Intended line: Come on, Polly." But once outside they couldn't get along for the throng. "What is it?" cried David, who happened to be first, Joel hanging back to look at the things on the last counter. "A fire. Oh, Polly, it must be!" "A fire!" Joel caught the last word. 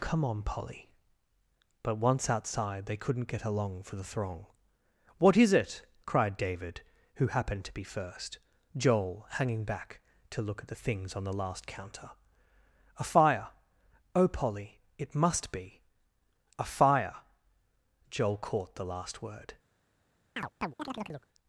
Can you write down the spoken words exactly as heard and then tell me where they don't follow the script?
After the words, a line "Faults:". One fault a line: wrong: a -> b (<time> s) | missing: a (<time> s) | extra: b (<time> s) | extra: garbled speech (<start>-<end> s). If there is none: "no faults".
Come on, Polly." But once outside they couldn't get along for the throng. "What is it?" cried David, who happened to be first, Joel hanging back to look at the things on the last counter. "A fire. Oh, Polly, it must be!" "A fire!" Joel caught the last word.
Faults:
no faults